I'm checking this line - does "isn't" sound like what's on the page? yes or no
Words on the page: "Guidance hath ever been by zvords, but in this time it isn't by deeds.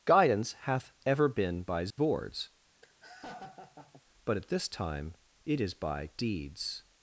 no